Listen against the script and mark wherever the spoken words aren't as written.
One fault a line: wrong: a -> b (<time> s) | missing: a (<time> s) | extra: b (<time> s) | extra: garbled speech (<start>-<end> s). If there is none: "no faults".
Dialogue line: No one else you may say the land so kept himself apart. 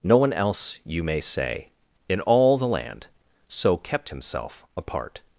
extra: in all (2.1 s)